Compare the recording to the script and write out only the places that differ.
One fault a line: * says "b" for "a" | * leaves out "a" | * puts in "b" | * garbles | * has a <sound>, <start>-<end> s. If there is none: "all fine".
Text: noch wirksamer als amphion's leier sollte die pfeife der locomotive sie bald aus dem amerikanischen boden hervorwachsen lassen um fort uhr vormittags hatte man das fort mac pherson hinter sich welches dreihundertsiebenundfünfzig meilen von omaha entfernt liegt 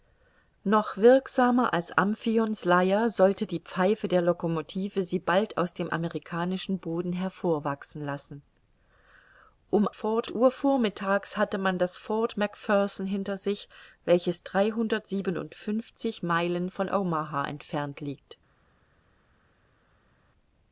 all fine